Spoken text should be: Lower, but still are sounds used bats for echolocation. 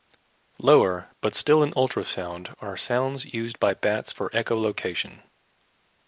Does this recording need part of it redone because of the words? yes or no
yes